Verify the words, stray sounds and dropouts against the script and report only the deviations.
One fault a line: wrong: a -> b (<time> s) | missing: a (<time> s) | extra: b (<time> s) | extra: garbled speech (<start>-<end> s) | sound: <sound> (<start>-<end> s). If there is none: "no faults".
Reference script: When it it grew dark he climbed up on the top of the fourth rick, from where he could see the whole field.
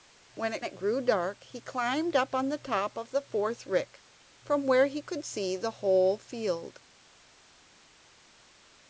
no faults